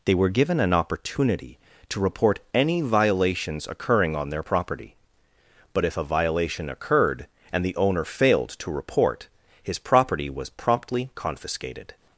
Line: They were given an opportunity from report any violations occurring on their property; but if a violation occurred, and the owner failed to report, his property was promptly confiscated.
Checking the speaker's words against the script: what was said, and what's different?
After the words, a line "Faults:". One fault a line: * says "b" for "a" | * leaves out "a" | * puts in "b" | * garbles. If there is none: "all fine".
They were given an opportunity to report any violations occurring on their property; but if a violation occurred, and the owner failed to report, his property was promptly confiscated.
Faults:
* says "to" for "from"